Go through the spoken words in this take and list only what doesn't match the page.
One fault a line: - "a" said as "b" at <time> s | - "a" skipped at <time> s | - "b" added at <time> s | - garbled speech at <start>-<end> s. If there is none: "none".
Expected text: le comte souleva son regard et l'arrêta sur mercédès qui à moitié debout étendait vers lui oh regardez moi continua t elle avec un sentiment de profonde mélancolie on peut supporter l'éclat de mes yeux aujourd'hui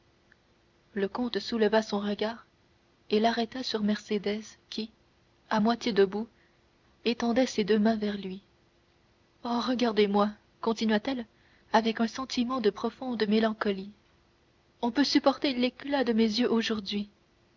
- "ses deux mains" added at 7.5 s